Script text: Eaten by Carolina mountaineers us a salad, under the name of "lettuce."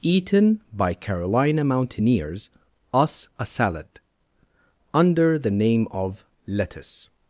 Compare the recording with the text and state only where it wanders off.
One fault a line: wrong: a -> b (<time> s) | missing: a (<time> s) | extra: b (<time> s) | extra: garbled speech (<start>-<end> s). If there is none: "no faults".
no faults